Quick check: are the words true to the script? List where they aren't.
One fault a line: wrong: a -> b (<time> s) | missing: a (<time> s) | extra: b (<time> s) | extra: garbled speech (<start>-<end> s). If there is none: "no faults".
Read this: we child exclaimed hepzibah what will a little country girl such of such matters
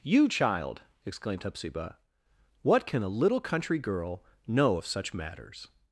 wrong: we -> you (0.0 s)
wrong: will -> can (2.9 s)
wrong: such -> know (4.5 s)